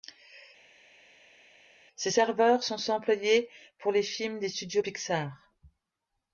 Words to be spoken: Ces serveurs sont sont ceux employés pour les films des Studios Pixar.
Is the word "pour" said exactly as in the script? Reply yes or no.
yes